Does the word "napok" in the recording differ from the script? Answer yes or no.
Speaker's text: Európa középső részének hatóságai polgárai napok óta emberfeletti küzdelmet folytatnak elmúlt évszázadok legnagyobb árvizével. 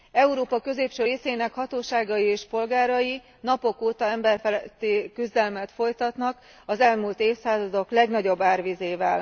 no